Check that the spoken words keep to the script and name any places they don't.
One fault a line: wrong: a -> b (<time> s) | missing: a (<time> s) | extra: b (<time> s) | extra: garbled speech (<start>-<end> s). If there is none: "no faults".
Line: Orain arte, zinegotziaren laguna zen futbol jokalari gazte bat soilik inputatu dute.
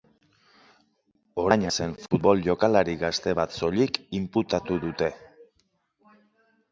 missing: arte zinegotziaren laguna (1.6 s)